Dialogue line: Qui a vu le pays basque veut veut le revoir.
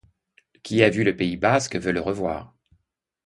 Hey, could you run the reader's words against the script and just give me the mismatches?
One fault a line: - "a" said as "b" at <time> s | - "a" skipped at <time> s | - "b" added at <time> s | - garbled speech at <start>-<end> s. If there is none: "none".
- "veut" skipped at 1.9 s